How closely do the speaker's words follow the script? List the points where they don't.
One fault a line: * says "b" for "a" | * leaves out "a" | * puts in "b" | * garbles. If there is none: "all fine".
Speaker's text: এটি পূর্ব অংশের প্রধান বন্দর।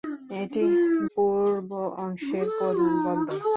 all fine